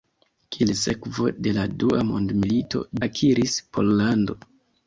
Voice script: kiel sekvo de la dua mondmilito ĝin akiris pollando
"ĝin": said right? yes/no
no